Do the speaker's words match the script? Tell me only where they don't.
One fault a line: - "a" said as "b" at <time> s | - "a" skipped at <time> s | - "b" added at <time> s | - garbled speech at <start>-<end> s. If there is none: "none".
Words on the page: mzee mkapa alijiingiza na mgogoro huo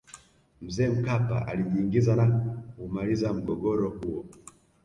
- "kuumaliza" added at 2.7 s